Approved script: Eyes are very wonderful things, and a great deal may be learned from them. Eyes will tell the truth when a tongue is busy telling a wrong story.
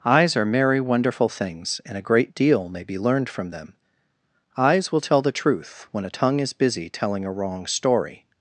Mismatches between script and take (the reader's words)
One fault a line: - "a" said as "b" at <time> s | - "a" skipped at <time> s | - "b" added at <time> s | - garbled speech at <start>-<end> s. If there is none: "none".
- "very" said as "merry" at 0.5 s